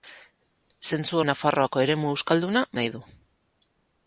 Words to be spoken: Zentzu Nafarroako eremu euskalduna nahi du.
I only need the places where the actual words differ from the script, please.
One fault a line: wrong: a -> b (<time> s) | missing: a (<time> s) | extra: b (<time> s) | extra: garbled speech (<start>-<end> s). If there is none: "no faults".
no faults